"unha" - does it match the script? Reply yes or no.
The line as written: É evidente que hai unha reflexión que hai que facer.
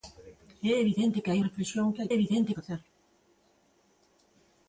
no